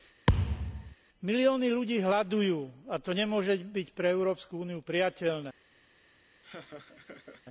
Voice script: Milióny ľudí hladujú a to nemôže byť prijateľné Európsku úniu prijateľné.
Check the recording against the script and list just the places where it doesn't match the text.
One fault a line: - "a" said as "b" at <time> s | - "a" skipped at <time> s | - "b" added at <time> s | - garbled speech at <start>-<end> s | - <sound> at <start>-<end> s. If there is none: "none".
- thud at 0.3-1.0 s
- "prijateľné" said as "pre" at 3.9 s
- laugh at 6.4-7.4 s